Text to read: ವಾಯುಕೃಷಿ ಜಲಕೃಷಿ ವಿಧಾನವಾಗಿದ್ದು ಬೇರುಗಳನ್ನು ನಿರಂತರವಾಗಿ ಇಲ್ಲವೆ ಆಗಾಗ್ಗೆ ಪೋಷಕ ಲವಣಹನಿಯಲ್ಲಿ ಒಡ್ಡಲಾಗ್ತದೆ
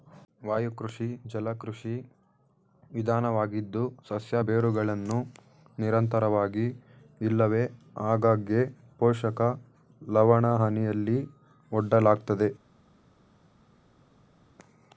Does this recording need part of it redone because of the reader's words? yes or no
yes